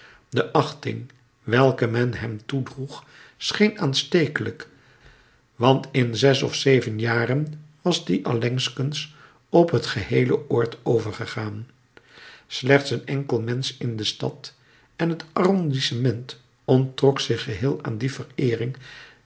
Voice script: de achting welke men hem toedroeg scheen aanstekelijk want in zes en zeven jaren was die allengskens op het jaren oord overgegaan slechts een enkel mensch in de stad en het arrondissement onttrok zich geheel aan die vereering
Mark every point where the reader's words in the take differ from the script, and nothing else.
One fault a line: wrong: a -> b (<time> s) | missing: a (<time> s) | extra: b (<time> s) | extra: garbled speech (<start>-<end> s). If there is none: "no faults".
wrong: en -> of (6.4 s)
wrong: jaren -> geheele (9.8 s)